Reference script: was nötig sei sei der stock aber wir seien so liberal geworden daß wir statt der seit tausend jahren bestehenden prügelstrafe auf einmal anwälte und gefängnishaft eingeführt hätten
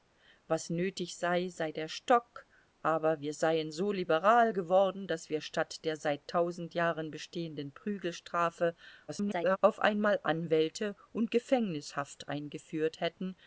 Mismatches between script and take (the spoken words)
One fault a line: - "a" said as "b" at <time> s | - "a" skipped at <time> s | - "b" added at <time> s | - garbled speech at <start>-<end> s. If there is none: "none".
- garbled speech at 9.1-9.6 s